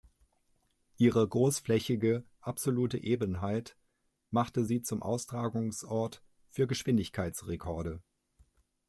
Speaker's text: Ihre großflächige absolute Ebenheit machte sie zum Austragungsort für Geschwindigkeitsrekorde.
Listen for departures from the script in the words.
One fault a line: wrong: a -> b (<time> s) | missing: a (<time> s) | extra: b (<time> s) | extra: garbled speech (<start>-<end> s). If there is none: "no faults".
no faults